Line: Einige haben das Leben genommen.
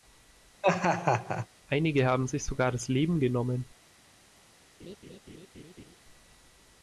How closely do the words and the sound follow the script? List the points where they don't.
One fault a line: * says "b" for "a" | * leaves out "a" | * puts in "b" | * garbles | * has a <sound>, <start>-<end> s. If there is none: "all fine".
* has a laugh, 0.6-1.5 s
* puts in "sich sogar"
* has a laugh, 4.8-6.0 s